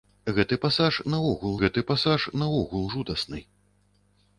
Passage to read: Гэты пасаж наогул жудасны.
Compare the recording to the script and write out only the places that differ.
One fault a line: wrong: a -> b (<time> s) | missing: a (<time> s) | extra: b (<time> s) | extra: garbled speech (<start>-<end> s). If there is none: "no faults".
extra: гэты пасаж наогул (1.6 s)